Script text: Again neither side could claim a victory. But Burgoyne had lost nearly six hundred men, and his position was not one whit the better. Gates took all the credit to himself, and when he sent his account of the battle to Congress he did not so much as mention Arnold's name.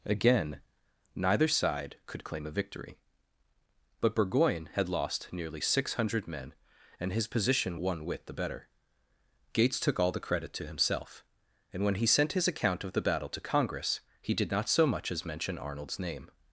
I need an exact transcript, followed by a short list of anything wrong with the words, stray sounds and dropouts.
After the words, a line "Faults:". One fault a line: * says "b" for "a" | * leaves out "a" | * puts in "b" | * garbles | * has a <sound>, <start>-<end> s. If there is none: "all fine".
Again neither side could claim a victory. But Burgoyne had lost nearly six hundred men, and his position one whit the better. Gates took all the credit to himself, and when he sent his account of the battle to Congress he did not so much as mention Arnold's name.
Faults:
* leaves out "was not"